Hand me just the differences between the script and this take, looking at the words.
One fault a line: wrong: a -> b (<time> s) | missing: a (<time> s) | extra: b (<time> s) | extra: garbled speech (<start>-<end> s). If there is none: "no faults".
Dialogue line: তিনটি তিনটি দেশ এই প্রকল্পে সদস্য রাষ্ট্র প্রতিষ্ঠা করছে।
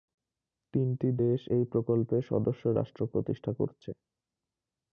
missing: তিনটি (1.1 s)